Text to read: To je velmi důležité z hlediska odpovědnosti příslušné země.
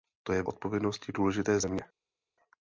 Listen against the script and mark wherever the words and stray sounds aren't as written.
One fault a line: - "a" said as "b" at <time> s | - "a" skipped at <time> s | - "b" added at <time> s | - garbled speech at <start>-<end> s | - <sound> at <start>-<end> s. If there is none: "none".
- "velmi" said as "odpovědnosti" at 0.5 s
- "hlediska odpovědnosti příslušné" skipped at 1.6 s